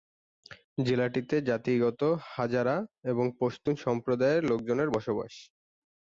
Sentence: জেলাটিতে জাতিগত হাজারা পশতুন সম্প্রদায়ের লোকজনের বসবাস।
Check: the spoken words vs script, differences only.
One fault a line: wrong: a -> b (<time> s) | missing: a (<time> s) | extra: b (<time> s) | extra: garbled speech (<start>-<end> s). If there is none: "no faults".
extra: এবং (3.1 s)